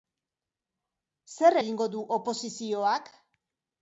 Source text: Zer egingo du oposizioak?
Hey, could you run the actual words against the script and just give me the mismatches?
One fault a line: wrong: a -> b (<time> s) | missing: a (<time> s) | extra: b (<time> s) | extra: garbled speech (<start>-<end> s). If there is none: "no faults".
no faults